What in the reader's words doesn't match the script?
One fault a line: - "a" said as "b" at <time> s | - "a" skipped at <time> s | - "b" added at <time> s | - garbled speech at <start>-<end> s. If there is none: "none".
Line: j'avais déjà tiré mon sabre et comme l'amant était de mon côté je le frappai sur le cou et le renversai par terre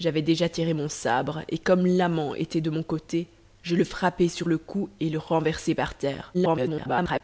- garbled speech at 6.3-7.2 s